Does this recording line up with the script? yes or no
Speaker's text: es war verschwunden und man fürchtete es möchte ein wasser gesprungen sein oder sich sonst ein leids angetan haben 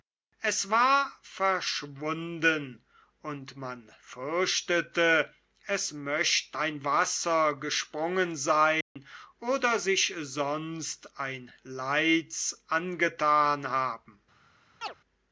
yes